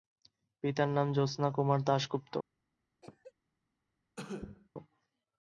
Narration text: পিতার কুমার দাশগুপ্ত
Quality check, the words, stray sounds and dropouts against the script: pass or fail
fail